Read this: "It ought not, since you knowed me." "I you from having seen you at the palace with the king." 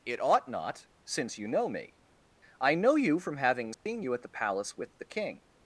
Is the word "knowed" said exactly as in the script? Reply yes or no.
no